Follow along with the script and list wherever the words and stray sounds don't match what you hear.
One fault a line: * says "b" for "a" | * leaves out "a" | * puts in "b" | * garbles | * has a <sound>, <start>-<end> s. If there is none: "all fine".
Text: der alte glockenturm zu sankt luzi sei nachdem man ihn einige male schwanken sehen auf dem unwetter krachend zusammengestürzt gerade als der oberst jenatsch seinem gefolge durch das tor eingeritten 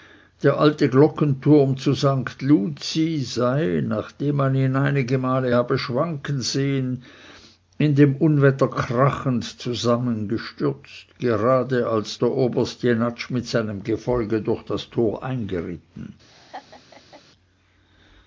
* puts in "habe"
* says "in" for "auf"
* puts in "mit"
* has a laugh, 16.3-17.2 s